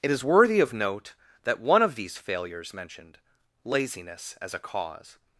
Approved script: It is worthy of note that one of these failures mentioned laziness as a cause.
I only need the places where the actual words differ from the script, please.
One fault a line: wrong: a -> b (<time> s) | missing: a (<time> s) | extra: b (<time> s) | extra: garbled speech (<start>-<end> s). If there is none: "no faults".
no faults